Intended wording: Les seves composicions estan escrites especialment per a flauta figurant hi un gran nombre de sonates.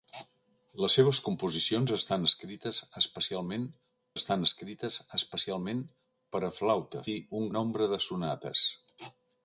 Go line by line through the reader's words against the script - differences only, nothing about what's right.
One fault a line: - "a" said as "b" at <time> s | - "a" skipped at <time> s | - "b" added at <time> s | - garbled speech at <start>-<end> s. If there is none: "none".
- "estan escrites especialment" added at 4.2 s
- "figurant" skipped at 7.0 s
- "gran" skipped at 7.5 s